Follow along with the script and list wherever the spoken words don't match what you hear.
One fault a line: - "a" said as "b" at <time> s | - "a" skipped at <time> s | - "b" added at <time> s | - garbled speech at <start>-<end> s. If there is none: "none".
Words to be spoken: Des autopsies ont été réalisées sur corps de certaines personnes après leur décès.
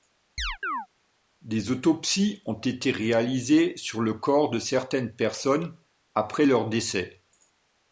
- "le" added at 4.0 s